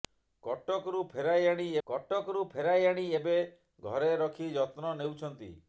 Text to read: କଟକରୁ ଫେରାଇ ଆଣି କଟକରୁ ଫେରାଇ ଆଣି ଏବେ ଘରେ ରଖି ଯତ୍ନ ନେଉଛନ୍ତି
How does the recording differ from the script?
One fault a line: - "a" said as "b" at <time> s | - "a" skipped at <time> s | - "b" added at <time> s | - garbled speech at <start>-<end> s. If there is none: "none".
none